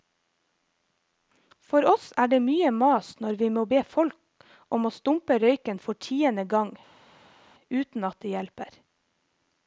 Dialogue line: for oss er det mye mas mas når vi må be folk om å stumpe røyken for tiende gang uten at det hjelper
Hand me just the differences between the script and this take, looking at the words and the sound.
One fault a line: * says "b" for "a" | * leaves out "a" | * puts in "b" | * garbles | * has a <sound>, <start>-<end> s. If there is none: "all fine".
* leaves out "mas"